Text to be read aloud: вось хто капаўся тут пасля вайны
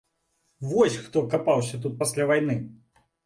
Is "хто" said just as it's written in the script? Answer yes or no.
yes